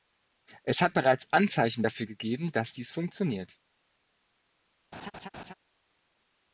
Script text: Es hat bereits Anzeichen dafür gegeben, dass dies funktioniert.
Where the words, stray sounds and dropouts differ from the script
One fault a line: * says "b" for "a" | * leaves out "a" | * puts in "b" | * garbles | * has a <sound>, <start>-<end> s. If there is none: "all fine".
* has a laugh, 4.9-5.5 s